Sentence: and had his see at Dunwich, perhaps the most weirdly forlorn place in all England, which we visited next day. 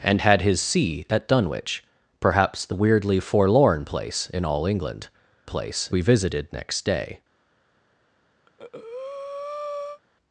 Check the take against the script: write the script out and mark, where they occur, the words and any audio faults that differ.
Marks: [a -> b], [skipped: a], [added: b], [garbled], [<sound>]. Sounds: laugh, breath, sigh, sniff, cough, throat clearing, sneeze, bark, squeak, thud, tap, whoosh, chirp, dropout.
and had his see at Dunwich, perhaps the [skipped: most] weirdly forlorn place in all England, [which -> place] we visited next day. [breath]